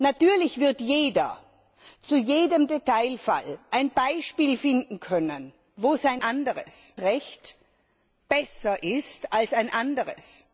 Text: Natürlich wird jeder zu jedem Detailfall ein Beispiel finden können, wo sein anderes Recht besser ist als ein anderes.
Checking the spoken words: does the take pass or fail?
pass